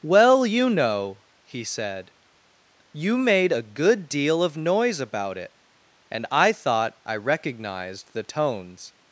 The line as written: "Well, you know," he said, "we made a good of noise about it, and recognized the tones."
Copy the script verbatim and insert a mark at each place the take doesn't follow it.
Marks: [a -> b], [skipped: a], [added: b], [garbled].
"Well, you know," he said, ["we -> you] made a good [added: deal] of noise about it, and [added: I thought I] recognized the tones."